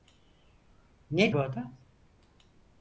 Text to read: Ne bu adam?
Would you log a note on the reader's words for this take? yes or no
no